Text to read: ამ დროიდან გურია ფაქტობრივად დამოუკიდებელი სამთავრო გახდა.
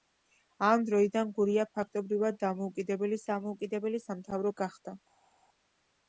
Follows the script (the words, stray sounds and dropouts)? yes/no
no